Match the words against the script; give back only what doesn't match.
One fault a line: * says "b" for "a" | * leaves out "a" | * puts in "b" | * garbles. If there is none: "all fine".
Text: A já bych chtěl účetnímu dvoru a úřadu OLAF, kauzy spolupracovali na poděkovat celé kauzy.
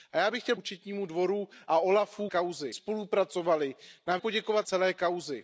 all fine